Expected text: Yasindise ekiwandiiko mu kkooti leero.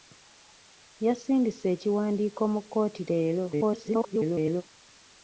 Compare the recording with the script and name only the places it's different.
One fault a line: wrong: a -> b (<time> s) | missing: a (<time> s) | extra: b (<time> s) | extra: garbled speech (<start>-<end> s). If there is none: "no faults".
extra: garbled speech (3.5-4.6 s)